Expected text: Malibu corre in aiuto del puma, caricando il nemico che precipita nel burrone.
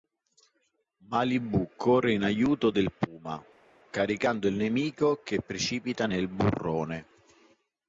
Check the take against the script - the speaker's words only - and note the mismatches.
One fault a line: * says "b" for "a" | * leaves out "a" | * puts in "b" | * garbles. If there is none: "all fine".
all fine